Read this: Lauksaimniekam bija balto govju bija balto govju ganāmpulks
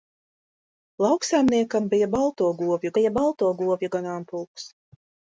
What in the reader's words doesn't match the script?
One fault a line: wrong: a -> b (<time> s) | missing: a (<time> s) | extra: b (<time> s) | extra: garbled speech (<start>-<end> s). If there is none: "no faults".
no faults